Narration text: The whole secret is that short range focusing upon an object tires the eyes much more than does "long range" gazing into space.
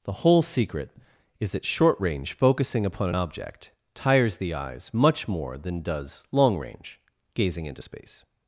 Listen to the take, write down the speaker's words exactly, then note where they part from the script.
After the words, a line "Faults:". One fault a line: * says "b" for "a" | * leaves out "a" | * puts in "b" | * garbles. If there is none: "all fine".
The whole secret is that short range focusing upon an object tires the eyes much more than does "long range" gazing into space.
Faults:
all fine